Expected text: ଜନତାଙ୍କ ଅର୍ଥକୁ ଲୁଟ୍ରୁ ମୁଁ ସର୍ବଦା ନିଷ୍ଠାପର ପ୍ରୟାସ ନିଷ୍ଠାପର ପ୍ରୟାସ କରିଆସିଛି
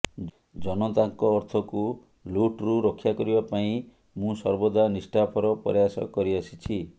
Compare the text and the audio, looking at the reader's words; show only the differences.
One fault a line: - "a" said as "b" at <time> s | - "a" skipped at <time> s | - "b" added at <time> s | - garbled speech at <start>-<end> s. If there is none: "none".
- "ରକ୍ଷା କରିବା ପାଇଁ" added at 2.9 s
- "ନିଷ୍ଠାପର ପ୍ରୟାସ" skipped at 6.1 s